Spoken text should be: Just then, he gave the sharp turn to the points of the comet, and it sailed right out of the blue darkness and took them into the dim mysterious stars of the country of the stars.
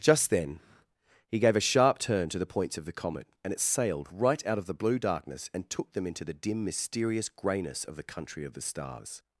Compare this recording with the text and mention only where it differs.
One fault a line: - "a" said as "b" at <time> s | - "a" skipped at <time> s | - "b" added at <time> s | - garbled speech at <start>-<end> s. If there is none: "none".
- "the" said as "a" at 1.6 s
- "stars" said as "greyness" at 7.3 s